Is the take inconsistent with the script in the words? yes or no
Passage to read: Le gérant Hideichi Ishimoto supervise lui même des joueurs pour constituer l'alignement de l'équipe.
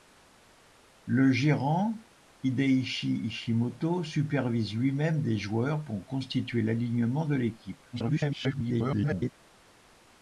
yes